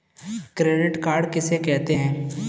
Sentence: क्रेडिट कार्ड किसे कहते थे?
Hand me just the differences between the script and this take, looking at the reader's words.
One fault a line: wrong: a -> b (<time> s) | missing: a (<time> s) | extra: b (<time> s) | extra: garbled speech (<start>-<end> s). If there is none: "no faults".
wrong: थे -> हैं (1.9 s)